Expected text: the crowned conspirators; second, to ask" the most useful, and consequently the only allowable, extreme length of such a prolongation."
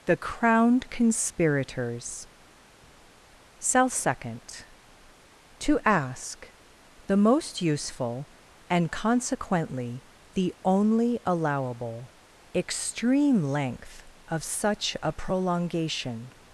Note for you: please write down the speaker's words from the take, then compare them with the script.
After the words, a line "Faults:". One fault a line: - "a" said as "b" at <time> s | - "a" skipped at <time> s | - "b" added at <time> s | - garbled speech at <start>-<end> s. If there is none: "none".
the crowned conspirators; cell second, to ask" the most useful, and consequently the only allowable, extreme length of such a prolongation."
Faults:
- "cell" added at 3.6 s